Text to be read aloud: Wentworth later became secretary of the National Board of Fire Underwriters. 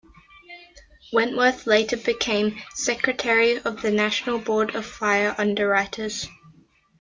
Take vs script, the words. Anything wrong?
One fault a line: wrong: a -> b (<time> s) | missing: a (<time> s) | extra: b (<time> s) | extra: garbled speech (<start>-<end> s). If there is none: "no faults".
no faults